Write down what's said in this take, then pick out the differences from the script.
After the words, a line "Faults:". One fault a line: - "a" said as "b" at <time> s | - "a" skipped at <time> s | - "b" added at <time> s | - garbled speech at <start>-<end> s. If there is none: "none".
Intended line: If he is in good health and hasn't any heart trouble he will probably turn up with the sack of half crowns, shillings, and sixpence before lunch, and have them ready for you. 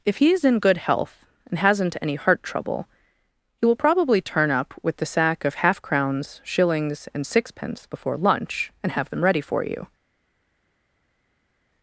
If he is in good health and hasn't any heart trouble he will probably turn up with the sack of half crowns, shillings, and sixpence before lunch, and have them ready for you.
Faults:
none